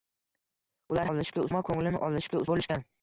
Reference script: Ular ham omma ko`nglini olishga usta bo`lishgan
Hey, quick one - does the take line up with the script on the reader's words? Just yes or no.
no